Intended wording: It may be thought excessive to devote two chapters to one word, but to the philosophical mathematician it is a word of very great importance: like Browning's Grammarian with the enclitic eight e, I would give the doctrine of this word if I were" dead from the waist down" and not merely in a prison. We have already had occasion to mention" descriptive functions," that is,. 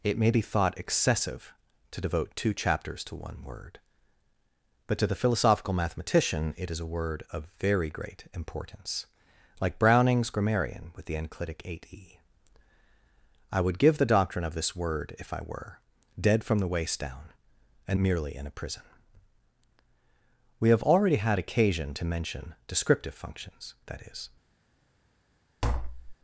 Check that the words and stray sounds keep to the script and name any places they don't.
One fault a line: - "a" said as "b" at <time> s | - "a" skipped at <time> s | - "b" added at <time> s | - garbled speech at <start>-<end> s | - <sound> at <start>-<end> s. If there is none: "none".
- "not" skipped at 18.0 s
- tap at 25.6-26.2 s